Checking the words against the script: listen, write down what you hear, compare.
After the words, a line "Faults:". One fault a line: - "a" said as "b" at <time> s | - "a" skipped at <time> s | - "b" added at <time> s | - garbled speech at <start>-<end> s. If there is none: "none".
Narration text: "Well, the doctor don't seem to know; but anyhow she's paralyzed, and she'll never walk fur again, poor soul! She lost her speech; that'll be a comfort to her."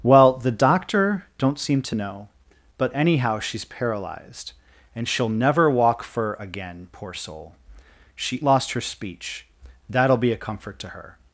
"Well, the doctor don't seem to know; but anyhow she's paralyzed, and she'll never walk fur again, poor soul! She lost her speech; that'll be a comfort to her."
Faults:
none